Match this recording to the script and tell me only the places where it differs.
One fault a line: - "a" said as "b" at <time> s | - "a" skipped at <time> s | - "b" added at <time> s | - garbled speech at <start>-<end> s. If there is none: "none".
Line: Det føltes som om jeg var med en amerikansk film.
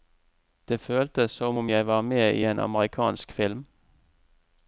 - "i" added at 2.3 s